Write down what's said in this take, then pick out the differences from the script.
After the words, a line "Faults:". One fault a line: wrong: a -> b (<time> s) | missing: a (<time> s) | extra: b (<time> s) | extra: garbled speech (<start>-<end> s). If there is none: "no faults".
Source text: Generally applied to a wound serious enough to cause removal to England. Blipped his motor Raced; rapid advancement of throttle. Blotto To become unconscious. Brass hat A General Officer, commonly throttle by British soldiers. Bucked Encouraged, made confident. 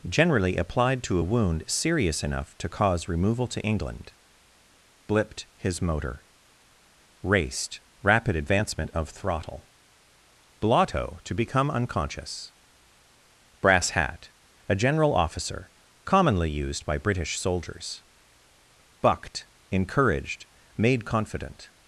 Generally applied to a wound serious enough to cause removal to England. Blipped his motor Raced; rapid advancement of throttle. Blotto To become unconscious. Brass hat A General Officer, commonly used by British soldiers. Bucked Encouraged, made confident.
Faults:
wrong: throttle -> used (16.5 s)